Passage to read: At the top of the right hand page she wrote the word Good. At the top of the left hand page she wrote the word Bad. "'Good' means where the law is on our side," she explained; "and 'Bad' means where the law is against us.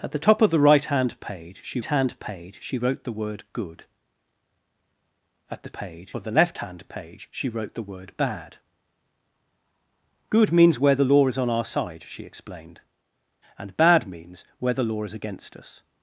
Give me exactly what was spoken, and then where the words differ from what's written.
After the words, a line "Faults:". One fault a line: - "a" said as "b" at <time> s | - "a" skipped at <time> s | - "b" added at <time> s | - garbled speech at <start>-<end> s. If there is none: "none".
At the top of the right hand page she hand page she wrote the word Good. At the page of the left hand page she wrote the word Bad. "'Good' means where the law is on our side," she explained; "and 'Bad' means where the law is against us.
Faults:
- "hand page she" added at 1.8 s
- "top" said as "page" at 5.7 s